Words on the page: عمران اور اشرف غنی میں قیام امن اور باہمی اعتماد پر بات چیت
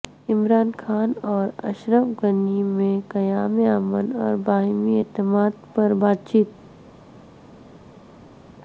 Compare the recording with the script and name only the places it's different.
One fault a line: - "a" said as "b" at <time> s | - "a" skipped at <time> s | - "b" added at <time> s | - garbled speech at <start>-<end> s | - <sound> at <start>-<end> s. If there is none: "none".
- "خان" added at 0.8 s